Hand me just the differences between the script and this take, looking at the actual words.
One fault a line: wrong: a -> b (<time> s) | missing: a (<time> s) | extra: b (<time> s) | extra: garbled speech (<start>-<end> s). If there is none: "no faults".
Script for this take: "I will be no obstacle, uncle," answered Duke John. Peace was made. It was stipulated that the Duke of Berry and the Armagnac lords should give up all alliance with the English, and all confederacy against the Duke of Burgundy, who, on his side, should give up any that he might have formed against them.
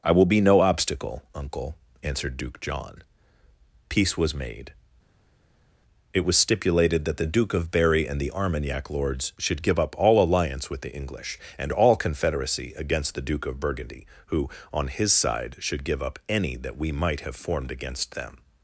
wrong: he -> we (16.8 s)